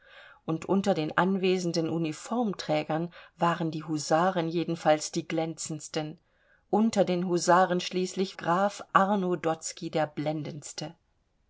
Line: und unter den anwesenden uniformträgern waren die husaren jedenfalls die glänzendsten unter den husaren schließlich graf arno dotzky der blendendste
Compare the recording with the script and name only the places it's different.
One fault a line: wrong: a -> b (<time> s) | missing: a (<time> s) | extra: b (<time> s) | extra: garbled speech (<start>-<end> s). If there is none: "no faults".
no faults